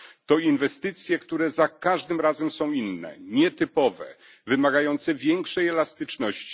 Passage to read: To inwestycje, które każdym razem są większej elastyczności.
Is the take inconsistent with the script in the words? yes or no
yes